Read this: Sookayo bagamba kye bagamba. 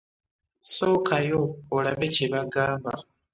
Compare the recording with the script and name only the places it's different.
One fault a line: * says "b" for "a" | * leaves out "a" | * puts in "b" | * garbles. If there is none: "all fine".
* says "olabe" for "bagamba"